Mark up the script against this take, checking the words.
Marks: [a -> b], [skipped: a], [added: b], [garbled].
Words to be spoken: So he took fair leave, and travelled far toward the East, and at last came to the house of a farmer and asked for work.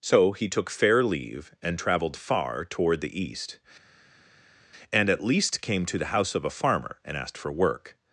So he took fair leave, and travelled far toward the East, and at [last -> least] came to the house of a farmer and asked for work.